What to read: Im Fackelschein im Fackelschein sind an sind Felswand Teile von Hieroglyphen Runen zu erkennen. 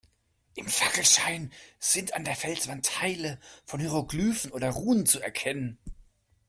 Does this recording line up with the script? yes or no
no